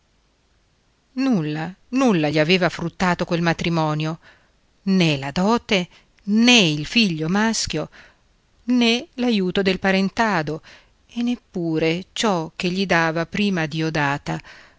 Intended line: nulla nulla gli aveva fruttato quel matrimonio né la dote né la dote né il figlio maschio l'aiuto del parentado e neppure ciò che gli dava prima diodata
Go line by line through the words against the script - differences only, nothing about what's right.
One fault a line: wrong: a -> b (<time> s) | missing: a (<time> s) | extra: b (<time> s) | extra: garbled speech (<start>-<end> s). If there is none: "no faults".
missing: la dote né (6.6 s)
extra: né (8.6 s)